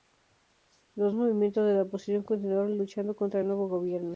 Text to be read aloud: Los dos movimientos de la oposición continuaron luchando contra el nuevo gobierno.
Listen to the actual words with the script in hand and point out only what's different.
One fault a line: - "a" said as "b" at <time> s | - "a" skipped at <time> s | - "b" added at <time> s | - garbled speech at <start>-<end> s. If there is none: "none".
- "dos" skipped at 1.1 s